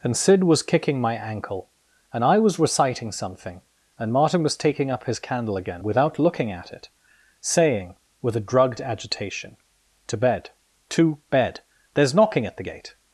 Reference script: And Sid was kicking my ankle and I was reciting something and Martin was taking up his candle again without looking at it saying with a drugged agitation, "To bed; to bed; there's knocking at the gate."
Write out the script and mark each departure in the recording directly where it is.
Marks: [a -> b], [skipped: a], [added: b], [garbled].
And Sid was kicking my ankle and I was reciting something and Martin was taking up his candle again without looking at it saying with a drugged agitation, "To bed; to bed; there's knocking at the gate."